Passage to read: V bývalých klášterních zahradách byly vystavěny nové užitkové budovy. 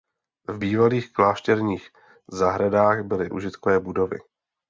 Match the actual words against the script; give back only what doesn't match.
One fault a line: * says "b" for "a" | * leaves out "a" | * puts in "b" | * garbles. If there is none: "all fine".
* leaves out "vystavěny nové"